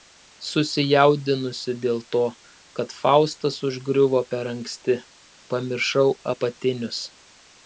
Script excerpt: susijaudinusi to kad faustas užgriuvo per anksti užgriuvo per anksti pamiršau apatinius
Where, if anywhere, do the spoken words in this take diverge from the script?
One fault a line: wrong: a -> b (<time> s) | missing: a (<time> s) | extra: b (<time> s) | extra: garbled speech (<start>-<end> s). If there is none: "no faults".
extra: dėl (1.8 s)
missing: užgriuvo per anksti (5.0 s)